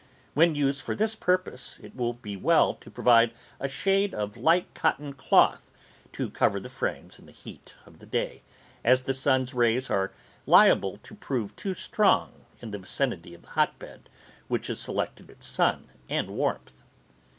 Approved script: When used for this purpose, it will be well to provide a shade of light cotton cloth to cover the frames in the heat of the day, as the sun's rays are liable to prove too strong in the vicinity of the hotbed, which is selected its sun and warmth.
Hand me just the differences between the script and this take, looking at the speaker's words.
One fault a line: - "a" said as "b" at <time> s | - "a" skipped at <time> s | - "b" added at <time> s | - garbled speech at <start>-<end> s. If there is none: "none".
none